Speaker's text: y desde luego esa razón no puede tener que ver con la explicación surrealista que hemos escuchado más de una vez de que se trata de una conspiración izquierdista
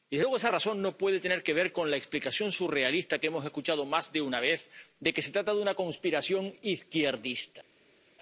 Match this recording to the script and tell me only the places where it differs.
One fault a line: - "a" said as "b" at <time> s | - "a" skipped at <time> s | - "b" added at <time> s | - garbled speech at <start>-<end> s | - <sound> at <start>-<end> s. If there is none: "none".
none